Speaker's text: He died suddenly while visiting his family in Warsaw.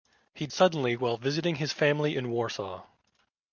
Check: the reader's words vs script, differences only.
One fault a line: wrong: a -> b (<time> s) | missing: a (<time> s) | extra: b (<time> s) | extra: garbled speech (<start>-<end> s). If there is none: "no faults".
missing: died (0.5 s)